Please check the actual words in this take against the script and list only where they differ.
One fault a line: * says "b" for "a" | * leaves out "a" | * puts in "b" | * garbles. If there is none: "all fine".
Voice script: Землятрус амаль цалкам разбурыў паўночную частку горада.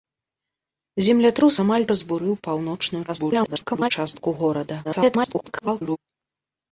* leaves out "цалкам"
* garbles
* garbles